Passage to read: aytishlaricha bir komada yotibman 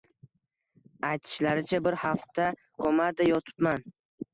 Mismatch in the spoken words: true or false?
true